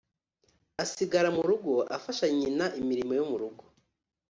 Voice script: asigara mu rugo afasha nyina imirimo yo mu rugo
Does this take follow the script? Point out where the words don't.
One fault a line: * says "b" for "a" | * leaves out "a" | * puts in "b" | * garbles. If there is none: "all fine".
all fine